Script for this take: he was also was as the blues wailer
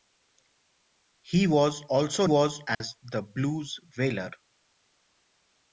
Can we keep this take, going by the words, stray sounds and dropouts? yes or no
no